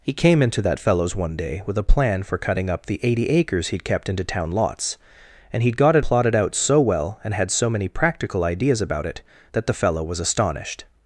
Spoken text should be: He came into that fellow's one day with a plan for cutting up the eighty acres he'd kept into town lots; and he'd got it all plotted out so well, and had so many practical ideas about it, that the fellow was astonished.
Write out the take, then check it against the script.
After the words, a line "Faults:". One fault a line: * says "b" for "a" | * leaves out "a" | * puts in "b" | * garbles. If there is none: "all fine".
He came into that fellow's one day with a plan for cutting up the eighty acres he'd kept into town lots; and he'd got it plotted out so well, and had so many practical ideas about it, that the fellow was astonished.
Faults:
* leaves out "all"